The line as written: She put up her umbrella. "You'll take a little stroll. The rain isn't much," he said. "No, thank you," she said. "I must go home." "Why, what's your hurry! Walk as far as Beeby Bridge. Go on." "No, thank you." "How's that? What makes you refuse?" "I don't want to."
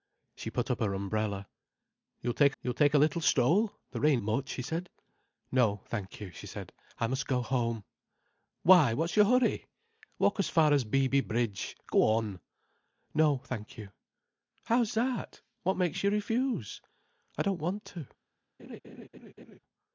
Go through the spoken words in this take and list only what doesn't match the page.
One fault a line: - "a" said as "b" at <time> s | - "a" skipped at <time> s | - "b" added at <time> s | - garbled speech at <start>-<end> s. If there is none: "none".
- "you'll take" added at 2.6 s
- "isn't" skipped at 4.2 s